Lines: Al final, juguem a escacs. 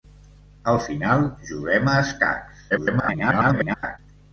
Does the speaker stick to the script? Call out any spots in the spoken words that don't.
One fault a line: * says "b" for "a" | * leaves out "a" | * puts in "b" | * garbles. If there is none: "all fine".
* garbles